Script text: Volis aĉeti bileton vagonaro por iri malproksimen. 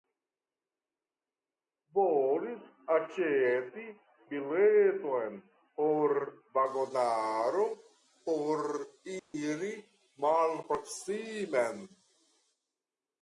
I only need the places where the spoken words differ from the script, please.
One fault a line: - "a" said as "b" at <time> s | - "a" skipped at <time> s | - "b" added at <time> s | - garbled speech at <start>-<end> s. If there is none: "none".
- "por" added at 5.8 s